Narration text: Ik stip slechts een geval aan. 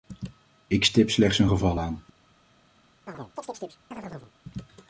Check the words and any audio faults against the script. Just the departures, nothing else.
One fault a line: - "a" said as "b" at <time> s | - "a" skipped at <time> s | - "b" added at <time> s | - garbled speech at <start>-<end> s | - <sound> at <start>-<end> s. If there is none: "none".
- chirp at 3.1-4.3 s